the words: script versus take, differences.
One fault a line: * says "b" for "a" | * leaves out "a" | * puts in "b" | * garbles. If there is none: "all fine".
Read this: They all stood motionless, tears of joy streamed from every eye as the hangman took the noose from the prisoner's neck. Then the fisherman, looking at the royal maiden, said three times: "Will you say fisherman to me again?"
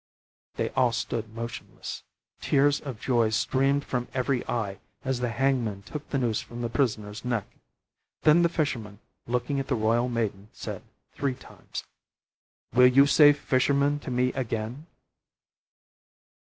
all fine